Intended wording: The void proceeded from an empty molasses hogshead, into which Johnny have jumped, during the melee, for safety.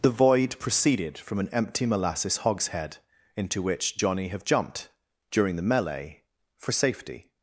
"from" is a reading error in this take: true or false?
false